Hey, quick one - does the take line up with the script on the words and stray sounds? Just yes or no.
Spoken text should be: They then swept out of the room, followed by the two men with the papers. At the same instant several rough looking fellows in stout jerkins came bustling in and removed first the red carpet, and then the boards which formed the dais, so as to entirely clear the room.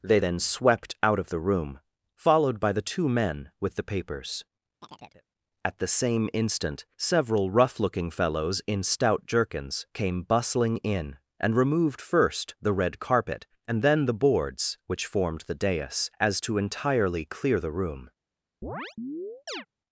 no